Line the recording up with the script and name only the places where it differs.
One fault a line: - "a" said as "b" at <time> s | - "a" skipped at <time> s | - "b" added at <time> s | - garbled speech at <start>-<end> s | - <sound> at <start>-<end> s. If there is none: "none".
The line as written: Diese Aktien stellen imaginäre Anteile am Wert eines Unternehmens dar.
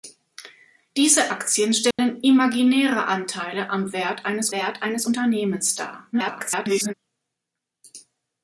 - dropout at 1.9-2.0 s
- "Wert eines" added at 4.5 s
- garbled speech at 6.1-6.9 s